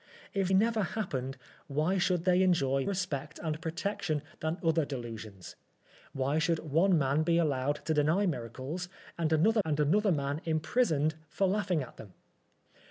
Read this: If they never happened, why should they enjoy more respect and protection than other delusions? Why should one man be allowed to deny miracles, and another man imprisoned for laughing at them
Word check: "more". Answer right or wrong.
wrong